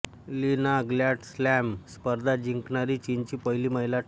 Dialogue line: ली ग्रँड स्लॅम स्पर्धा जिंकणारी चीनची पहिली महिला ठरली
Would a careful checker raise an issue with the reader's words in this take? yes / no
yes